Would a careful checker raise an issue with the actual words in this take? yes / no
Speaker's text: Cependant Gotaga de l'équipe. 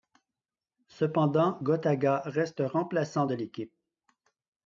yes